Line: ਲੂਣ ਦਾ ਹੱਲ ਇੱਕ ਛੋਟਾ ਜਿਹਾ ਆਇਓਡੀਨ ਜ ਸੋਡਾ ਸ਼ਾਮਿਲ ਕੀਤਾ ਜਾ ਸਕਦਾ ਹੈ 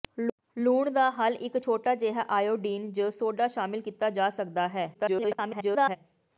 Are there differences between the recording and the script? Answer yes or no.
yes